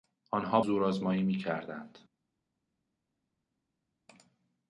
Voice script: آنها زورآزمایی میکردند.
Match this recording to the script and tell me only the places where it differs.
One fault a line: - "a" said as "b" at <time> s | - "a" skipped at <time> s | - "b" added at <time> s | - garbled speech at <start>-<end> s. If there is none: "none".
none